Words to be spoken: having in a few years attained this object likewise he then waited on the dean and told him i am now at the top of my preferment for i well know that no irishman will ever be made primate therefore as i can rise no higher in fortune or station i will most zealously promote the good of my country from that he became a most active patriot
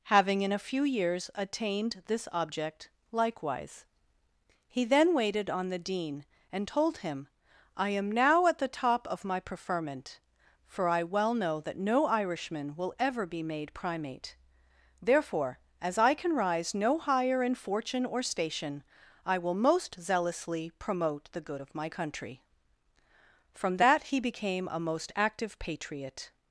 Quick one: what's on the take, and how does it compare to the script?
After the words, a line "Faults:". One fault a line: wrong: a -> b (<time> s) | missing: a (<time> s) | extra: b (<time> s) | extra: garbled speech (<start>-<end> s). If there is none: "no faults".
having in a few years attained this object likewise he then waited on the dean and told him i am now at the top of my preferment for i well know that no irishman will ever be made primate therefore as i can rise no higher in fortune or station i will most zealously promote the good of my country from that he became a most active patriot
Faults:
no faults